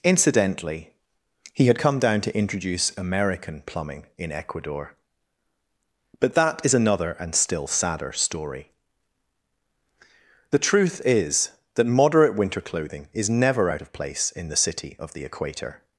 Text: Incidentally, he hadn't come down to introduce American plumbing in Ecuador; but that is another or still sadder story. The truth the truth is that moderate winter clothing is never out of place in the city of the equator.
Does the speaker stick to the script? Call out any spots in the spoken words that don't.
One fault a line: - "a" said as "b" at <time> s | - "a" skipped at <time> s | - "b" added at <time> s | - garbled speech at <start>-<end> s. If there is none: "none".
- "hadn't" said as "had" at 1.7 s
- "or" said as "and" at 7.2 s
- "the truth" skipped at 11.0 s